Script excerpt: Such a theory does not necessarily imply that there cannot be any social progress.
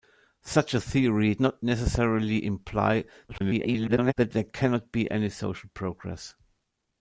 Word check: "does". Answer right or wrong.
wrong